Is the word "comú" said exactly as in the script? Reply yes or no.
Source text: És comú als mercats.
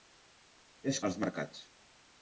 no